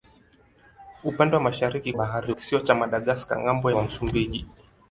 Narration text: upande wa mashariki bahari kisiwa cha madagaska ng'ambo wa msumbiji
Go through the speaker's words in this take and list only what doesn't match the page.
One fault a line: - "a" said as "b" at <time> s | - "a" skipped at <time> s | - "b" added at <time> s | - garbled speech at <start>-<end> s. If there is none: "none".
none